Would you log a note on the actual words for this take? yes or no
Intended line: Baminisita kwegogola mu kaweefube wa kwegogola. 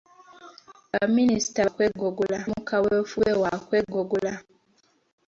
no